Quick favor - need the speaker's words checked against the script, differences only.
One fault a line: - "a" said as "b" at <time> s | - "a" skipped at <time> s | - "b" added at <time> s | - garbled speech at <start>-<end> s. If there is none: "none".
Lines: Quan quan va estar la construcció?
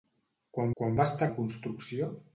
none